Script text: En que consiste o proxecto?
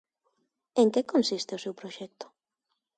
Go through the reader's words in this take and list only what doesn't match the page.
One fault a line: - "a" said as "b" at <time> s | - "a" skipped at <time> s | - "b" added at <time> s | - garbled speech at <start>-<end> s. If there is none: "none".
- "seu" added at 1.6 s